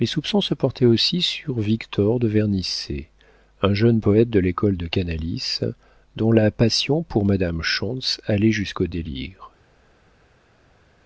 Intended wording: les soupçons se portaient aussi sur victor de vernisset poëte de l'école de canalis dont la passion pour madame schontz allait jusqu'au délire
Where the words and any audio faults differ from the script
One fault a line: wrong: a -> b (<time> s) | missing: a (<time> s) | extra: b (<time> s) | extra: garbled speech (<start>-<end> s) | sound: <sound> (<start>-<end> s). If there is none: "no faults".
extra: un jeune (3.6 s)